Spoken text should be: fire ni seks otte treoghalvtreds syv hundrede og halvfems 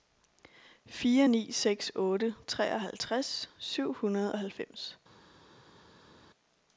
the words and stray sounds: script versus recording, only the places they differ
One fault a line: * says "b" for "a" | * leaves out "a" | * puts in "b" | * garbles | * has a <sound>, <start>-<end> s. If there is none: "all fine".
all fine